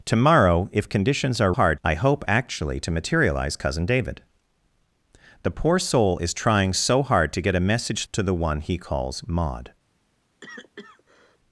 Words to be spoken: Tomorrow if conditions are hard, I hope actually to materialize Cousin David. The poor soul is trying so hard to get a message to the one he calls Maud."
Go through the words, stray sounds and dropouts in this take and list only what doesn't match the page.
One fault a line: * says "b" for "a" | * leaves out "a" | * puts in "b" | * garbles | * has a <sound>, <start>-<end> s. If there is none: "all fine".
* has a cough, 10.4-11.4 s